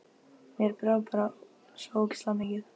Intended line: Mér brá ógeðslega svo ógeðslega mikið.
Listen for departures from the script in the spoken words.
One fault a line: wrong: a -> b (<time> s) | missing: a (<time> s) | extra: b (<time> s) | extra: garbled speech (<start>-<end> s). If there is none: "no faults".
wrong: ógeðslega -> bara (1.1 s)